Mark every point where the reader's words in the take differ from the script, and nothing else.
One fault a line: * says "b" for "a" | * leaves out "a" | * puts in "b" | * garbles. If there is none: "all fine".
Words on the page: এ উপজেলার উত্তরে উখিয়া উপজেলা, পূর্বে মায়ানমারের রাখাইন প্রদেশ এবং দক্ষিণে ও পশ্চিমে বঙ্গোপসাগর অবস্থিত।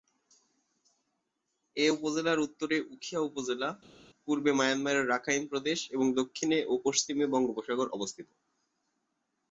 all fine